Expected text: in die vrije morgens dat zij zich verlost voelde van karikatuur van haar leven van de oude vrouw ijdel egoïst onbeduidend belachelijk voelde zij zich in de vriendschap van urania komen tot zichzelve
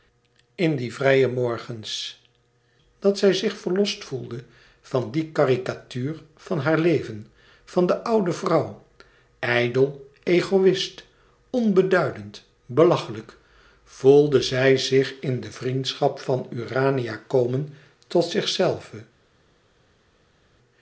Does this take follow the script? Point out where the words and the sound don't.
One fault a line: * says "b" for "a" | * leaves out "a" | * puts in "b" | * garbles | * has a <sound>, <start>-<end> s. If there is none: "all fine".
* puts in "die"